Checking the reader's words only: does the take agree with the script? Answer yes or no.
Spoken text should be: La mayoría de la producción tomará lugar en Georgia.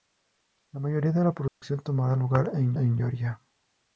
no